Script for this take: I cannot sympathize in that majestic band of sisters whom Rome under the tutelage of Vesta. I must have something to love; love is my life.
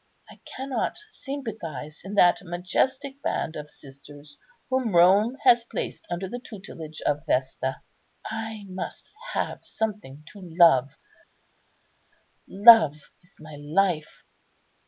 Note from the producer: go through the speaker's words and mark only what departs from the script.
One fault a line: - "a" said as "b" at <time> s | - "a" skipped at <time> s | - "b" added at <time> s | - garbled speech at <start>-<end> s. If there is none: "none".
- "has placed" added at 5.4 s